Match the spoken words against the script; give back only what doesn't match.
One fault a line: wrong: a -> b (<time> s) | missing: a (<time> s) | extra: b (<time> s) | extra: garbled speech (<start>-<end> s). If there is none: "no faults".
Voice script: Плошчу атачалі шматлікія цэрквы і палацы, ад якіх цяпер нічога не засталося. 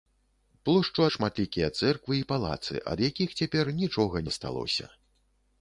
missing: атачалі (1.0 s)
missing: не (4.2 s)